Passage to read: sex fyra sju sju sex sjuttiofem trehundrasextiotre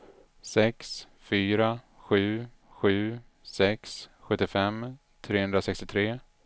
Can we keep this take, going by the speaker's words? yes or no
yes